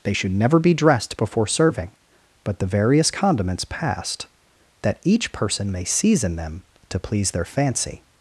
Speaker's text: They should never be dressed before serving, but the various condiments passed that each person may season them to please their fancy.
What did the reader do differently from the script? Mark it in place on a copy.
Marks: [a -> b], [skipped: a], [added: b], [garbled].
They should never be dressed before serving, but the various condiments passed that each person may season them to please their fancy.